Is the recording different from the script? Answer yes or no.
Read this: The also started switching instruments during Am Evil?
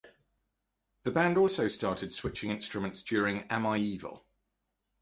yes